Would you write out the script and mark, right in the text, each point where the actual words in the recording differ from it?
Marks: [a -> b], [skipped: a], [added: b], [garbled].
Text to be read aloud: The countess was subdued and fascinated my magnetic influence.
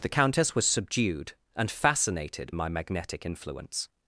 The countess was subdued and fascinated my magnetic influence.